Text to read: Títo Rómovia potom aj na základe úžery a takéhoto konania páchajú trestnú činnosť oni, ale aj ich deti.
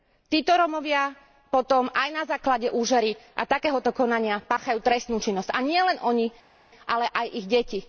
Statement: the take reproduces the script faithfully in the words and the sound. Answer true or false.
false